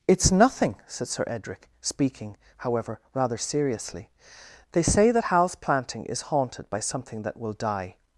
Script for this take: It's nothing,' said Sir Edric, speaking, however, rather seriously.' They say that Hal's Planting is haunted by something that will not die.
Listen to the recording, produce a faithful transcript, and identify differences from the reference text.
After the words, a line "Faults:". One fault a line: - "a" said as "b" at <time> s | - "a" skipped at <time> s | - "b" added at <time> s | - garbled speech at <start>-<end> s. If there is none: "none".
It's nothing,' said Sir Edric, speaking, however, rather seriously.' They say that Hal's Planting is haunted by something that will die.
Faults:
- "not" skipped at 7.5 s